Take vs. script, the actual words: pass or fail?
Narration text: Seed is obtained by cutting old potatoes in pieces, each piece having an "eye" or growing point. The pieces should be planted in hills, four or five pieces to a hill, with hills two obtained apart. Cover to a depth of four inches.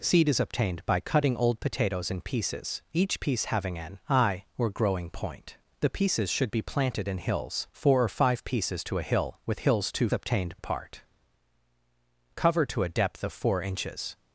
pass